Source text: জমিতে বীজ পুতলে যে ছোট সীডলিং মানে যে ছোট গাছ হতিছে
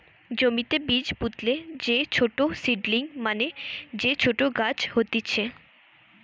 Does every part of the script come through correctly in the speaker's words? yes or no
yes